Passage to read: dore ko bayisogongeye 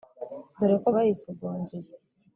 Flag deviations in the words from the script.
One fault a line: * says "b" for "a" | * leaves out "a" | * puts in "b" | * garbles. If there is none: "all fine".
all fine